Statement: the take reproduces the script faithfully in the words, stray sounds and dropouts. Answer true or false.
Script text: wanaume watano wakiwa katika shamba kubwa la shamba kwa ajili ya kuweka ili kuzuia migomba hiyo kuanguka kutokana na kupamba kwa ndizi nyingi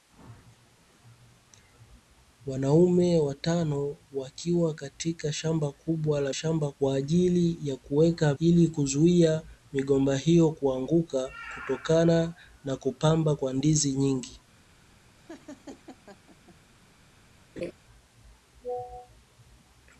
false